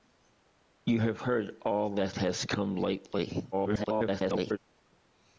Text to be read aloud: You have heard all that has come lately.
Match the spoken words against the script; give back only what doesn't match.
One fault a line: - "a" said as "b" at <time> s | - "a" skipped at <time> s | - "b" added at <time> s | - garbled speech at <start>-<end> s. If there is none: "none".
- garbled speech at 3.5-4.6 s